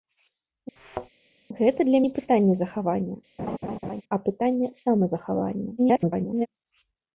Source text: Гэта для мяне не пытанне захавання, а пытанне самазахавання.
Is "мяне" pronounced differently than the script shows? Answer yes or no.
yes